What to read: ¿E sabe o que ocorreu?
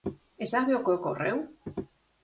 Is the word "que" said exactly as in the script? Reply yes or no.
yes